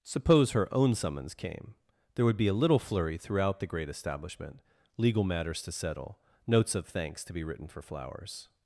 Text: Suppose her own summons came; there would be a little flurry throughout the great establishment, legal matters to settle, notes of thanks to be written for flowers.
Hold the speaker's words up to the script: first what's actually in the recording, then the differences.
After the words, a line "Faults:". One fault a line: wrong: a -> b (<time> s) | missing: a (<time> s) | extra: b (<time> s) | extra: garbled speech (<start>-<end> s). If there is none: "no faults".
Suppose her own summons came; there would be a little flurry throughout the great establishment, legal matters to settle, notes of thanks to be written for flowers.
Faults:
no faults